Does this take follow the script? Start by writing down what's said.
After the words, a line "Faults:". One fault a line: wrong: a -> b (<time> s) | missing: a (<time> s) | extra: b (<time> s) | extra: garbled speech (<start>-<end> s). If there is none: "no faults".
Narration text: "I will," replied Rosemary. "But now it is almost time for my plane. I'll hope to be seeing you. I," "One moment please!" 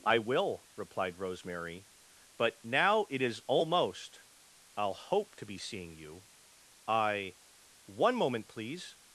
"I will," replied Rosemary. "But now it is almost. I'll hope to be seeing you. I," "One moment please!"
Faults:
missing: time for my plane (4.2 s)